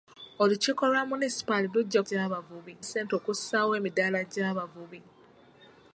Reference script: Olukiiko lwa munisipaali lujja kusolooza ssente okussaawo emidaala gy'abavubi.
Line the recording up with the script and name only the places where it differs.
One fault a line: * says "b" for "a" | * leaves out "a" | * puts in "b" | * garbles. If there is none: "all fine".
* says "gy'abavubi" for "kusolooza"